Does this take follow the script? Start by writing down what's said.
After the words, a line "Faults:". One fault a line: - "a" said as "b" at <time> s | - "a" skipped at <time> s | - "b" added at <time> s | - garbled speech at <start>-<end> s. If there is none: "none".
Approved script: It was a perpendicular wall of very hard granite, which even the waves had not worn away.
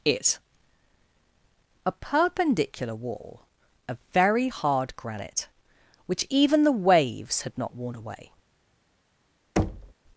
It a perpendicular wall of very hard granite, which even the waves had not worn away.
Faults:
- "was" skipped at 0.4 s